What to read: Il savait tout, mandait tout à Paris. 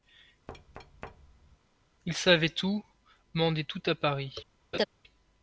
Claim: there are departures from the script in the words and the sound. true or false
true